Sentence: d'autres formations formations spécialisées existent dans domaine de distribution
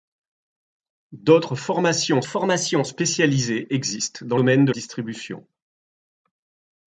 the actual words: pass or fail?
pass